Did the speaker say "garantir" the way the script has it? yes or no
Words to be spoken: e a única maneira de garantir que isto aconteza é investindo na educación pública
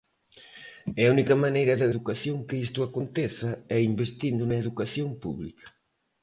no